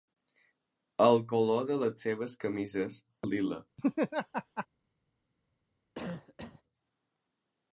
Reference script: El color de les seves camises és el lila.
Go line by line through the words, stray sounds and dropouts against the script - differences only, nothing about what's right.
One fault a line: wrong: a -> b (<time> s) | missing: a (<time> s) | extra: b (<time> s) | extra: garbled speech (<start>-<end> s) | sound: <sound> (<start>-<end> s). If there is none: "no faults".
missing: és (3.0 s)
sound: laugh (3.8-4.7 s)
sound: cough (5.9-6.6 s)